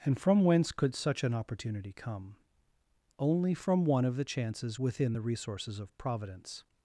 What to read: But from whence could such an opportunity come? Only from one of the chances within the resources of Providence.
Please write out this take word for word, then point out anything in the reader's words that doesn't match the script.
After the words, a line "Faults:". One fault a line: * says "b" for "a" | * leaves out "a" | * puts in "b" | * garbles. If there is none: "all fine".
And from whence could such an opportunity come? Only from one of the chances within the resources of Providence.
Faults:
* says "And" for "But"